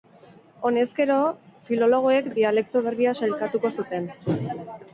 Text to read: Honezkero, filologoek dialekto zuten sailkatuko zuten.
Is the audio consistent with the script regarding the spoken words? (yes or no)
no